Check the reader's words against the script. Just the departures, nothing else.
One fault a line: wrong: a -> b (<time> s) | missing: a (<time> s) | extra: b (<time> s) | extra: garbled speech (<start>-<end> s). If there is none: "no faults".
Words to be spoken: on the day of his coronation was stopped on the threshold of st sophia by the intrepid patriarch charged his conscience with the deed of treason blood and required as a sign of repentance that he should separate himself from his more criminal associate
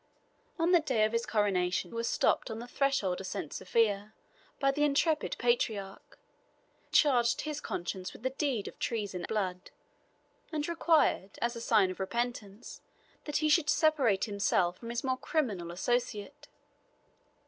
no faults